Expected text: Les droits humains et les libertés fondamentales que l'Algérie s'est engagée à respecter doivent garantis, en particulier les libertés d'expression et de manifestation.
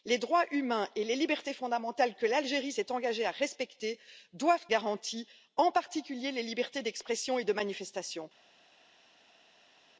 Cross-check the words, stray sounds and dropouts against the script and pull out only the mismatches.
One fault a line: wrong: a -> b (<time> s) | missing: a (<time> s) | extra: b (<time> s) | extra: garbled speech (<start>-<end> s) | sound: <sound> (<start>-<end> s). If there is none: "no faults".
no faults